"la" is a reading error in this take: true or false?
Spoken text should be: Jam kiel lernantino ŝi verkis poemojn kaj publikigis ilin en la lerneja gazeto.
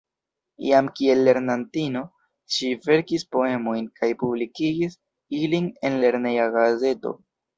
true